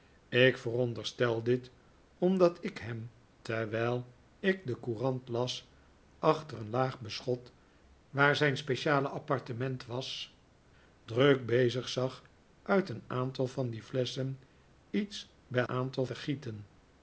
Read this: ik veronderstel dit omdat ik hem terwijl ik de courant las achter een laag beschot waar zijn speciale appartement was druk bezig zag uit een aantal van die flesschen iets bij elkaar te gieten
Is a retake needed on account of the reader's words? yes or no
yes